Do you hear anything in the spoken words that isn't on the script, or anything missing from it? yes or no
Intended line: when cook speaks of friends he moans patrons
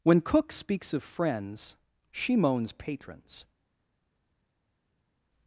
yes